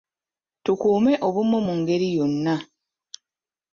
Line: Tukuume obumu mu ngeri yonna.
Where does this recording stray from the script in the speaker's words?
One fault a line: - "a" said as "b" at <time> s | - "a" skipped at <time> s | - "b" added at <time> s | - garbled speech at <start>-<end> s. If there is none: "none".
none